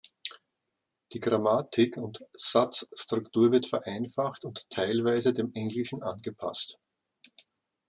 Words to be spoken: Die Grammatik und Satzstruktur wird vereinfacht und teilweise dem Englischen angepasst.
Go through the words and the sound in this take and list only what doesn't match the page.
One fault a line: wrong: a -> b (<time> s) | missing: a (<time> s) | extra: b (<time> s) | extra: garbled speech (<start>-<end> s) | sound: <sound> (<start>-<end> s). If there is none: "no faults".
no faults